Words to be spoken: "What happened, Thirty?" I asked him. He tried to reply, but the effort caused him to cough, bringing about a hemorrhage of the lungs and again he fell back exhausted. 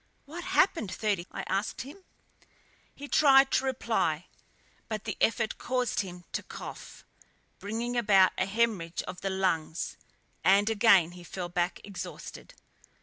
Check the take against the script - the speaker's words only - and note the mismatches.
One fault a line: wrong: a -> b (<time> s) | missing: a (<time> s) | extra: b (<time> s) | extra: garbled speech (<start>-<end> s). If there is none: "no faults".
no faults